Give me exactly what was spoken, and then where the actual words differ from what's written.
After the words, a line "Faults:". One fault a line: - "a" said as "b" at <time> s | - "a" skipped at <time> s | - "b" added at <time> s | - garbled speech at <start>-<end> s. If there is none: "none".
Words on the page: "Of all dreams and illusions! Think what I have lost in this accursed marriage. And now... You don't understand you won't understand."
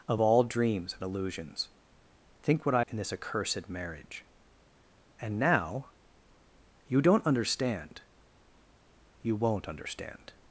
"Of all dreams and illusions! Think what I in this accursed marriage. And now... You don't understand you won't understand."
Faults:
- "have lost" skipped at 2.8 s